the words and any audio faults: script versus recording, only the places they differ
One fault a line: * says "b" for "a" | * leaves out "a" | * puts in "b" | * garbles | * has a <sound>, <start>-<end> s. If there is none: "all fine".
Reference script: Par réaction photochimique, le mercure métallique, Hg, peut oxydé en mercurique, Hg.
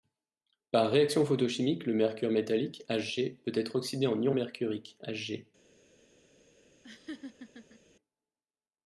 * puts in "être"
* puts in "ion"
* has a laugh, 6.8-7.8 s